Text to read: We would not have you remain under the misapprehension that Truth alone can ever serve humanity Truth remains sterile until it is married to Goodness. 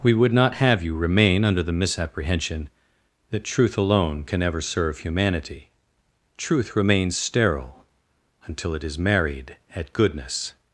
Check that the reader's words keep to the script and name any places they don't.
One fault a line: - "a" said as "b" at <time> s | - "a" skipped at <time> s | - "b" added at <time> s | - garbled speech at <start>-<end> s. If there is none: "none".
- "to" said as "at" at 9.8 s